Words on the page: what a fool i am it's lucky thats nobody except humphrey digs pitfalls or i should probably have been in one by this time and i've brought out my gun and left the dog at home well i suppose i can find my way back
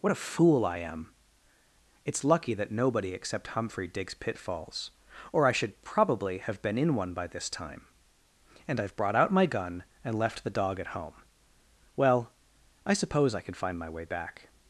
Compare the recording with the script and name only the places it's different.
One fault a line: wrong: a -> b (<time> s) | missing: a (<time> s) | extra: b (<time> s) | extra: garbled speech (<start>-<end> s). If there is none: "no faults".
wrong: thats -> that (2.5 s)